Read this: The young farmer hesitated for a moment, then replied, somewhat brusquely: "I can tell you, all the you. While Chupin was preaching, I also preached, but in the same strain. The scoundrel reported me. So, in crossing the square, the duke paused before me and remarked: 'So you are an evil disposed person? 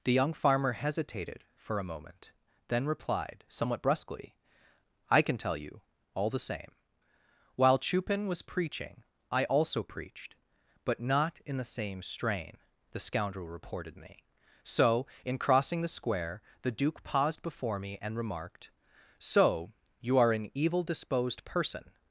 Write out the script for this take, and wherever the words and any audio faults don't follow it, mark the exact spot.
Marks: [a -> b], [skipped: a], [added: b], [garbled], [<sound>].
The young farmer hesitated for a moment, then replied, somewhat brusquely: "I can tell you, all the [you. -> same] While Chupin was preaching, I also preached, but [added: not] in the same strain. The scoundrel reported me. So, in crossing the square, the duke paused before me and remarked: 'So you are an evil disposed person?